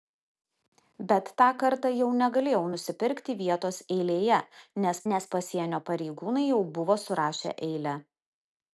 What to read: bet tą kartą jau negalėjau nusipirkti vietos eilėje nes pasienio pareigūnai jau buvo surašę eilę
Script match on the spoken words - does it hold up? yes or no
no